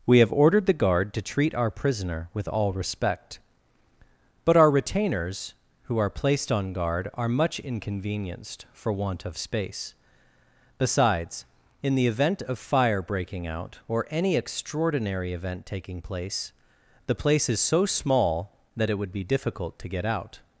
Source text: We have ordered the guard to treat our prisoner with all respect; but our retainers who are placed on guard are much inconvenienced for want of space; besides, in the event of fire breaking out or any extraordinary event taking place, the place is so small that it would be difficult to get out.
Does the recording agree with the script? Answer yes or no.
yes